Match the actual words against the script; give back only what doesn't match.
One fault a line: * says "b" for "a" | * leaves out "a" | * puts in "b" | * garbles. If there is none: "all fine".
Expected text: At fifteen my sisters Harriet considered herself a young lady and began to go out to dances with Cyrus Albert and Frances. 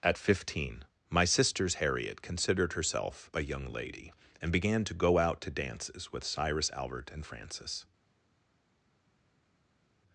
all fine